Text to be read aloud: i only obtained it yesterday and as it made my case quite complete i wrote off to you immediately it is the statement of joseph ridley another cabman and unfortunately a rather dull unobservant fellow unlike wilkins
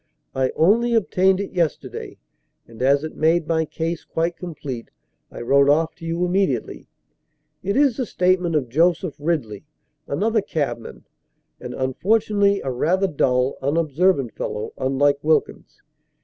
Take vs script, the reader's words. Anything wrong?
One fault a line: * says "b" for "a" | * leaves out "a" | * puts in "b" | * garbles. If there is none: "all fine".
all fine